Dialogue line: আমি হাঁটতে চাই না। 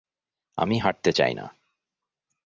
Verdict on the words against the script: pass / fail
pass